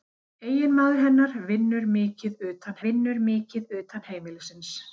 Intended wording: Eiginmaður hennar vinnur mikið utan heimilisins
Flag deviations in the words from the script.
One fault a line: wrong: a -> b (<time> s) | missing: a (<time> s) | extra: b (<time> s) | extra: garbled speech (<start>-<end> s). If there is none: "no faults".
extra: vinnur mikið utan (2.9 s)